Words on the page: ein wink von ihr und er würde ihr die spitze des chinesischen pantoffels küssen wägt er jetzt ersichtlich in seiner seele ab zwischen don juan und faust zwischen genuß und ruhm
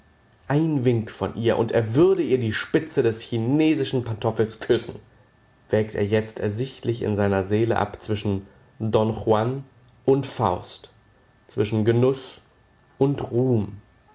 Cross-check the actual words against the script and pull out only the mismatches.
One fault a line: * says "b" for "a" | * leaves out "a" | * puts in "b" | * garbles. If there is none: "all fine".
all fine